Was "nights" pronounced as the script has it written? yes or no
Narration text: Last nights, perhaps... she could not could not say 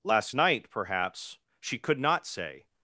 no